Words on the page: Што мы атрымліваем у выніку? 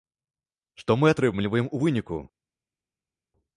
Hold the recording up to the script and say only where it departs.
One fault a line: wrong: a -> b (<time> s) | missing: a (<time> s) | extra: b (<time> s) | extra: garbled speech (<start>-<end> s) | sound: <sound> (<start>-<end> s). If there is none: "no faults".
no faults